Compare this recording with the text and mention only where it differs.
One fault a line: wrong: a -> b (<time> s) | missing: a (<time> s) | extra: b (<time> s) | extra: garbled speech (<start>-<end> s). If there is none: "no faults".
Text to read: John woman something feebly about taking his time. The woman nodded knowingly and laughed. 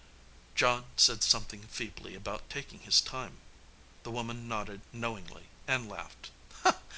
wrong: woman -> said (1.0 s)